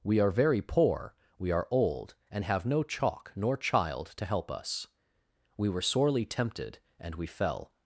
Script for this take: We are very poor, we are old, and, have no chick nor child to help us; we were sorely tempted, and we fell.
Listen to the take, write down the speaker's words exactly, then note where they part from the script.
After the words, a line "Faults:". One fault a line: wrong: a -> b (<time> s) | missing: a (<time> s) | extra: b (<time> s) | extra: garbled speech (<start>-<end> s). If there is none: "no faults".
We are very poor, we are old, and, have no chalk nor child to help us; we were sorely tempted, and we fell.
Faults:
wrong: chick -> chalk (2.8 s)